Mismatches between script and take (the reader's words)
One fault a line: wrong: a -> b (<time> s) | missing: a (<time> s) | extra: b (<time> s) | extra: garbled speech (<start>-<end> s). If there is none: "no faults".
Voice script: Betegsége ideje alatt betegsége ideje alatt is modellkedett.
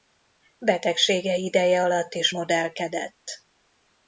missing: betegsége ideje alatt (2.1 s)